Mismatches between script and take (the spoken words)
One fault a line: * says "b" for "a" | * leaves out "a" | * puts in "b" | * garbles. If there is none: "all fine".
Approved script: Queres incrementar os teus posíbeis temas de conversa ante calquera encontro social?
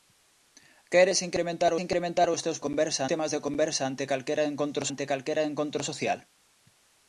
* puts in "incrementar"
* says "conversa" for "posíbeis"
* puts in "ante calquera encontro"